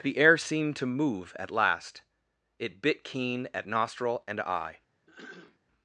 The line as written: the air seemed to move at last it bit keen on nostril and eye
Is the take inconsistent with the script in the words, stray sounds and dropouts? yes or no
yes